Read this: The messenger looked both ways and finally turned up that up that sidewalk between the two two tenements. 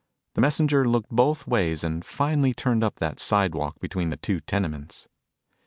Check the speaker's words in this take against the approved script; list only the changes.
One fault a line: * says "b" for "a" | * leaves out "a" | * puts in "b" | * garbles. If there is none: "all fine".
* leaves out "up that"
* leaves out "two"